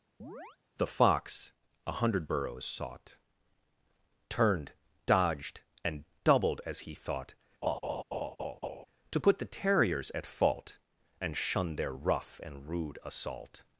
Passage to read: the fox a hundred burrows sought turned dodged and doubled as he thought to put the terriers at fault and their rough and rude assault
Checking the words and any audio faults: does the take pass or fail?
fail